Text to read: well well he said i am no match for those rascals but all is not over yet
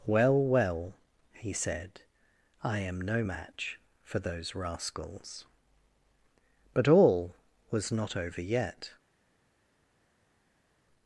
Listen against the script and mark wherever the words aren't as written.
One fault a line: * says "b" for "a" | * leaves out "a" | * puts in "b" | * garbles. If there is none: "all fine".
* says "was" for "is"